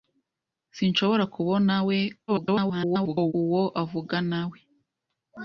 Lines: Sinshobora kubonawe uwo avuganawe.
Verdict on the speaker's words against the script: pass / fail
fail